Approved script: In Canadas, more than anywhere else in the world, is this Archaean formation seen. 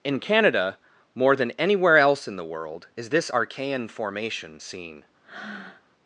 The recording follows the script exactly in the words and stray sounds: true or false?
false